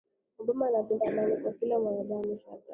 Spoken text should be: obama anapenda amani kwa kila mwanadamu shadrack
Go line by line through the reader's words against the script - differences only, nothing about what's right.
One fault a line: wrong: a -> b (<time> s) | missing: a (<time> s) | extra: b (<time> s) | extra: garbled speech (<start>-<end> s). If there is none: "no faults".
no faults